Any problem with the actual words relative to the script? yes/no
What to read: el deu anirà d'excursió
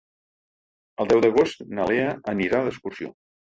yes